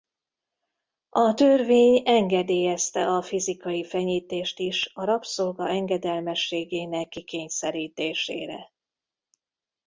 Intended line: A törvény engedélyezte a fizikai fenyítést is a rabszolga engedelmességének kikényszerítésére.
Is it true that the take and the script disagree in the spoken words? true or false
false